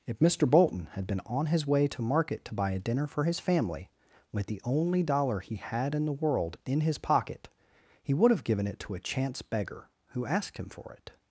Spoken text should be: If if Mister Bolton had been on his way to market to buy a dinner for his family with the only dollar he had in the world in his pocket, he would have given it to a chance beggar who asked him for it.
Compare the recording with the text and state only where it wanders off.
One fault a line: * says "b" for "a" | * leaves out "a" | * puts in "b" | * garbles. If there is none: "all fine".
* leaves out "if"